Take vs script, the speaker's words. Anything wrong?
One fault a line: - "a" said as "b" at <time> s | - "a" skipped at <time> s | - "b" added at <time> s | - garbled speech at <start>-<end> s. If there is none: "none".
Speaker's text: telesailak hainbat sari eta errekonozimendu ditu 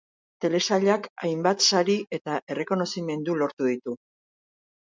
- "lortu" added at 3.4 s